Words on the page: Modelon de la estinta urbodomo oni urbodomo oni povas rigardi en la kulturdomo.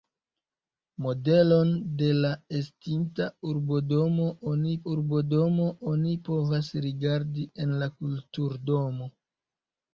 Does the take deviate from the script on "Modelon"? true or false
false